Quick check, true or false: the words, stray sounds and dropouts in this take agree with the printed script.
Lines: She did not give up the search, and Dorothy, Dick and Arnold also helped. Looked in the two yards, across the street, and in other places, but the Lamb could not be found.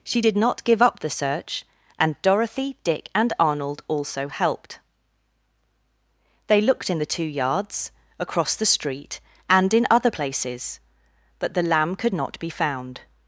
false